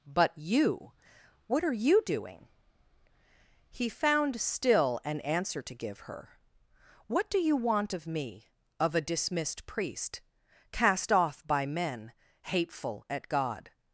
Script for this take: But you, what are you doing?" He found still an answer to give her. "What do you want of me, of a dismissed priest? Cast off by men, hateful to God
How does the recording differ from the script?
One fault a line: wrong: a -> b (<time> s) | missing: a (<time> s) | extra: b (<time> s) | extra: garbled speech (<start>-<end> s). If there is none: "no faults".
wrong: to -> at (13.1 s)